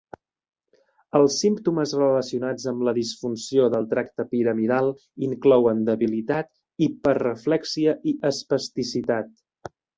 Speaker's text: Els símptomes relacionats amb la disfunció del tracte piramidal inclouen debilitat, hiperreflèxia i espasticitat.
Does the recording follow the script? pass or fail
pass